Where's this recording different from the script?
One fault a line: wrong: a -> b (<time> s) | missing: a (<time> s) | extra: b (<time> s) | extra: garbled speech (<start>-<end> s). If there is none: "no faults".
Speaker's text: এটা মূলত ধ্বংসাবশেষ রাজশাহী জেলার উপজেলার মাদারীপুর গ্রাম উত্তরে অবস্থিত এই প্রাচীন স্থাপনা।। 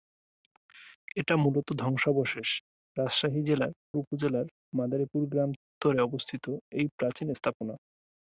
no faults